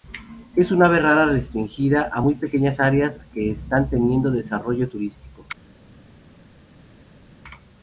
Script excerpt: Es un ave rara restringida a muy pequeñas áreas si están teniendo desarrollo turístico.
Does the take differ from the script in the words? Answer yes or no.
yes